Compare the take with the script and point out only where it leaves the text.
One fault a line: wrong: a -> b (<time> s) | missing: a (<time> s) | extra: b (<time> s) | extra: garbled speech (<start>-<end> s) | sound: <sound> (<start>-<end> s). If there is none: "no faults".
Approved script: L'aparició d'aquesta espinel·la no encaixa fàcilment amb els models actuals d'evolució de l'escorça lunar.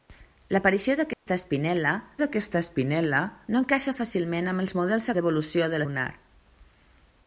sound: dropout (1.1-1.3 s)
extra: d'aquesta espinel·la (2.2 s)
missing: actuals (5.1 s)
missing: l'escorça (5.8 s)